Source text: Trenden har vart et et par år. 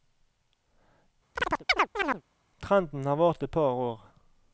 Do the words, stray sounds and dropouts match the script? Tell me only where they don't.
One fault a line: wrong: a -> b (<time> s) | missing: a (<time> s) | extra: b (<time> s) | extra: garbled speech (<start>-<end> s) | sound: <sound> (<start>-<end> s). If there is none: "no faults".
sound: chirp (1.4-2.2 s)
missing: et (3.5 s)